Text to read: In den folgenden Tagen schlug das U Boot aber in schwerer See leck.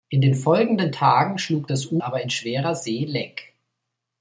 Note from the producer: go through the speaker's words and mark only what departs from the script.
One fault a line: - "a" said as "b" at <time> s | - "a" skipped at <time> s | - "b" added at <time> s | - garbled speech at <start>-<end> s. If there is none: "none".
- "Boot" skipped at 2.0 s